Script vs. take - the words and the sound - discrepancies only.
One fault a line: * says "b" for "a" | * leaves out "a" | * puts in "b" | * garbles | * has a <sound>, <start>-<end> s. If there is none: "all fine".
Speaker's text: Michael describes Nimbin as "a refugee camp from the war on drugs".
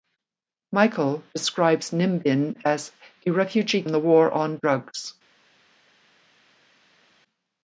* leaves out "camp from"